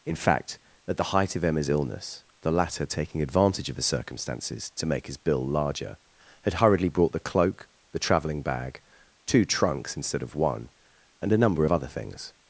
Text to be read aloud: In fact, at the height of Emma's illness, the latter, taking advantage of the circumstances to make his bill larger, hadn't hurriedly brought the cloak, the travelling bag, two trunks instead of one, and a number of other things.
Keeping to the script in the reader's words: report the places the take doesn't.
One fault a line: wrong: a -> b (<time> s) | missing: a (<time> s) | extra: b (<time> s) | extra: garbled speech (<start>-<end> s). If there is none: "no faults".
wrong: hadn't -> had (6.4 s)